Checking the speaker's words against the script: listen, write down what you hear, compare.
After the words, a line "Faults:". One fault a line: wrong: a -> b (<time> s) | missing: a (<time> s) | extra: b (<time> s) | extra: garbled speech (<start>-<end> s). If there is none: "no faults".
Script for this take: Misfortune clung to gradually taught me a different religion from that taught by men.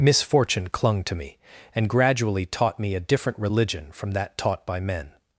Misfortune clung to me and gradually taught me a different religion from that taught by men.
Faults:
extra: me and (1.1 s)